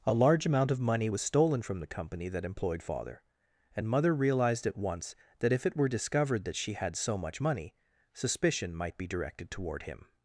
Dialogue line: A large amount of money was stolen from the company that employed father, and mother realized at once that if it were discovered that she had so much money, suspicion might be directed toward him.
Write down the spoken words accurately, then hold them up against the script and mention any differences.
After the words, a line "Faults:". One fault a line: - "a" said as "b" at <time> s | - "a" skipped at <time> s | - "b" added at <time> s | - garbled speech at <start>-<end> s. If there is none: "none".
A large amount of money was stolen from the company that employed father, and mother realized at once that if it were discovered that she had so much money, suspicion might be directed toward him.
Faults:
none